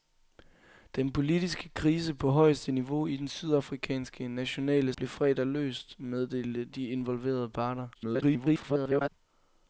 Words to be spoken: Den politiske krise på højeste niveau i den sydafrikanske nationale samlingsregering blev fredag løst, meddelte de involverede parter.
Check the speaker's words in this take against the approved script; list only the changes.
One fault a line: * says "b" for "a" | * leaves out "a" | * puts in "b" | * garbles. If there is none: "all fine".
* leaves out "samlingsregering"
* garbles